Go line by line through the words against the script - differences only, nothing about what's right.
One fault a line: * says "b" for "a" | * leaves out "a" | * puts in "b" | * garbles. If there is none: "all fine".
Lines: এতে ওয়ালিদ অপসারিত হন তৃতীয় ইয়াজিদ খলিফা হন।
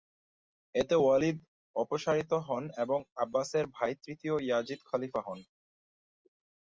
* puts in "এবং আব্বাসের ভাই"